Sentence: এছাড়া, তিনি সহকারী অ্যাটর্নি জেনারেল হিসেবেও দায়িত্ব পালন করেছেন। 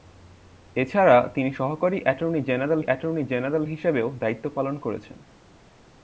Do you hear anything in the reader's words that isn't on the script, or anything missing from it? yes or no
yes